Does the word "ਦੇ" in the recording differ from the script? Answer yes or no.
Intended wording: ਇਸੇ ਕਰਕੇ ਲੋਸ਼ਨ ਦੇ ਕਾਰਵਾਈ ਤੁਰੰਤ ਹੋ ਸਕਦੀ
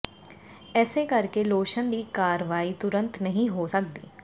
yes